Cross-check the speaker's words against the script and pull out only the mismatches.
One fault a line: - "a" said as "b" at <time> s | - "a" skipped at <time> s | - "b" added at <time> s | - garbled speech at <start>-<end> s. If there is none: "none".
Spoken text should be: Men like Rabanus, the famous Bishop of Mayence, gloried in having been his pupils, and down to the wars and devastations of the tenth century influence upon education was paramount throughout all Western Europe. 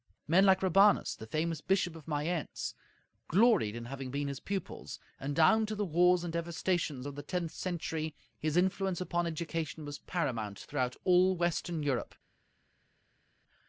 - "his" added at 8.4 s